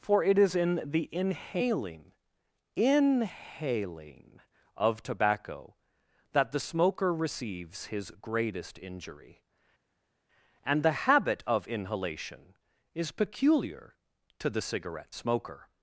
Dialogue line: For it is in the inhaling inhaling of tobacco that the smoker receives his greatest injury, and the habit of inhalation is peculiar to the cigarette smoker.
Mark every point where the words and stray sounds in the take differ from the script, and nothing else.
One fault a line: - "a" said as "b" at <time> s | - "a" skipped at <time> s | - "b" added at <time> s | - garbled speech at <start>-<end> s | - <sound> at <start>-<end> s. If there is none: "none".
none